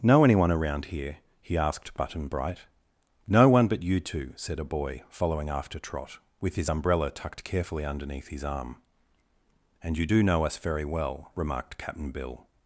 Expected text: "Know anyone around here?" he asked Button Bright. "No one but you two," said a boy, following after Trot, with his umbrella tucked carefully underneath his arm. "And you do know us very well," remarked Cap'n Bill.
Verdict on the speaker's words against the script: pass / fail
pass